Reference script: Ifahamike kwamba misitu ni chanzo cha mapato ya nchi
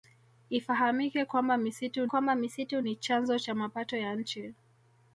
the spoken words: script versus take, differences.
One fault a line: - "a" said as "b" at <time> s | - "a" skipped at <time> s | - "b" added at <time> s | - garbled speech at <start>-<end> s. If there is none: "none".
- "kwamba misitu" added at 2.0 s